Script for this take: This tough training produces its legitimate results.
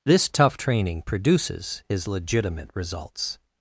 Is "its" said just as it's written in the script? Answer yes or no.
no